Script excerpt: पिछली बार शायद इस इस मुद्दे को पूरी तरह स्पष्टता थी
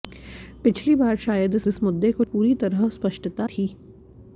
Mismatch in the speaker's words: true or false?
false